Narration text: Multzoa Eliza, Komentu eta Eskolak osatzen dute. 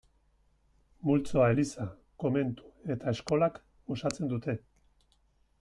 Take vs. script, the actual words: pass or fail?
pass